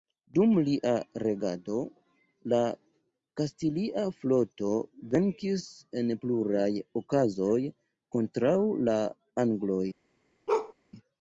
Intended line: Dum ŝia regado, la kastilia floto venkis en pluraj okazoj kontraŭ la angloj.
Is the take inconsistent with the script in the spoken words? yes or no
yes